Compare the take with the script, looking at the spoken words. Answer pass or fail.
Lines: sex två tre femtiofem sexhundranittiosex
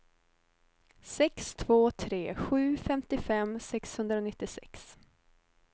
fail